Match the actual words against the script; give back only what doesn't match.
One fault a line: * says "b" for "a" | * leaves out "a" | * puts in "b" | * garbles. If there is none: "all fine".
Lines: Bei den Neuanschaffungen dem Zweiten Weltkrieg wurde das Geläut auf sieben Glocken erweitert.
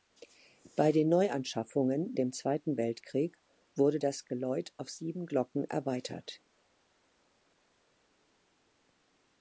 all fine